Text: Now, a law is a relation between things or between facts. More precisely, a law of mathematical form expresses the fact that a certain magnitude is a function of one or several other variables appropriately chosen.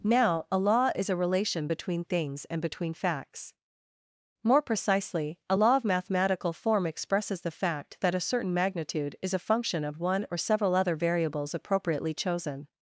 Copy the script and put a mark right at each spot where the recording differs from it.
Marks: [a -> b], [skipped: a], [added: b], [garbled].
Now, a law is a relation between things [or -> and] between facts. More precisely, a law of mathematical form expresses the fact that a certain magnitude is a function of one or several other variables appropriately chosen.